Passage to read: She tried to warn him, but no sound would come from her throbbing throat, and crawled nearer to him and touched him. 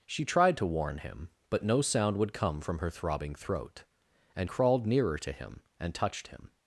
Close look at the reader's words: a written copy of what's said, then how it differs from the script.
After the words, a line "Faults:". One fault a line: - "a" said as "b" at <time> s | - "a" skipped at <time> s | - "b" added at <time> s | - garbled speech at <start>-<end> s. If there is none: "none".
She tried to warn him, but no sound would come from her throbbing throat, and crawled nearer to him and touched him.
Faults:
none